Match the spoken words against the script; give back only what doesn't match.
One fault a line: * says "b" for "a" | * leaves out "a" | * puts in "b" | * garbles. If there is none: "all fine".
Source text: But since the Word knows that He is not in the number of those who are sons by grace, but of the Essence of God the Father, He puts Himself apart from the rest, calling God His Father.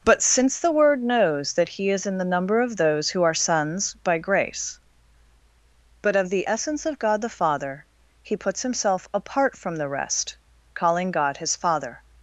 * leaves out "not"